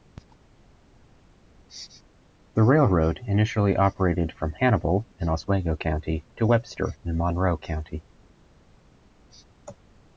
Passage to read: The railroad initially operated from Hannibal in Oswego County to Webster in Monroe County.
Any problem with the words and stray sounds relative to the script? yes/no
no